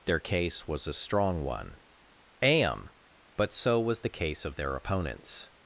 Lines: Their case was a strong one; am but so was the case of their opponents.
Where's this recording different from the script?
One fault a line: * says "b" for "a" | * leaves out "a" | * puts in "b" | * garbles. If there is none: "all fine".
all fine